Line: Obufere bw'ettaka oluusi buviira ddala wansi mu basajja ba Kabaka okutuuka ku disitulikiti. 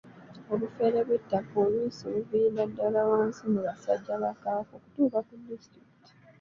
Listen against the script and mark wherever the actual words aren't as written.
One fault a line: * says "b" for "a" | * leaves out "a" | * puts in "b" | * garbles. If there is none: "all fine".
all fine